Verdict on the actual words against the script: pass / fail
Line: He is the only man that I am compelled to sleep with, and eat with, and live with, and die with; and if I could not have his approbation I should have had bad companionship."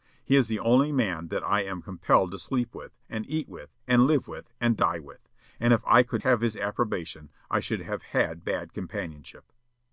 fail